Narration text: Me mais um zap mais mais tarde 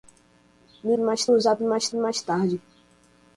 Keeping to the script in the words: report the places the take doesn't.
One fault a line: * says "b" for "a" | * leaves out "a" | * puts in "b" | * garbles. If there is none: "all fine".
all fine